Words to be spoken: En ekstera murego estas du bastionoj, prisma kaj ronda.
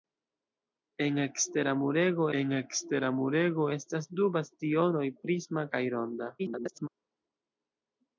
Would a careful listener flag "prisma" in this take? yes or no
no